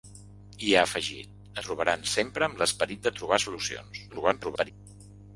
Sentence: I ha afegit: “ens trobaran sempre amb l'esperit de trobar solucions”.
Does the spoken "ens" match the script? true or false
false